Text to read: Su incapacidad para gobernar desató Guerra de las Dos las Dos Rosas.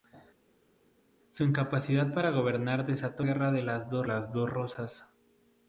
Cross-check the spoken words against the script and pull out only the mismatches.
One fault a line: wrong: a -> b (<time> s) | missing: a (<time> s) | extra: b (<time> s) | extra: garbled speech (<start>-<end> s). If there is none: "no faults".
no faults